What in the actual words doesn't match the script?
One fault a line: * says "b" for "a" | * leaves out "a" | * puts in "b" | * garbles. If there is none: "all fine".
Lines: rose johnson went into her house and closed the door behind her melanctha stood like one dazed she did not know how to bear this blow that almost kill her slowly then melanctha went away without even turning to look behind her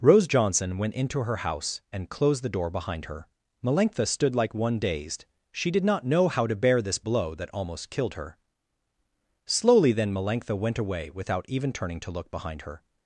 * says "killed" for "kill"